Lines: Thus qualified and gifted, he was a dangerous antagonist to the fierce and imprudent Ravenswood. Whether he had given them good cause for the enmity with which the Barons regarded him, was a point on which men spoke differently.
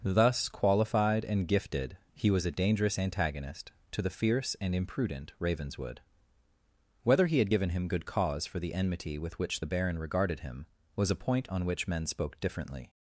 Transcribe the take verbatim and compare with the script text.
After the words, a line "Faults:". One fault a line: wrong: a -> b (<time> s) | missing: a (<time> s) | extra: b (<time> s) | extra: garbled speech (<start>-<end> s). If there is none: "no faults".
Thus qualified and gifted, he was a dangerous antagonist to the fierce and imprudent Ravenswood. Whether he had given him good cause for the enmity with which the Baron regarded him, was a point on which men spoke differently.
Faults:
wrong: them -> him (7.7 s)
wrong: Barons -> Baron (9.7 s)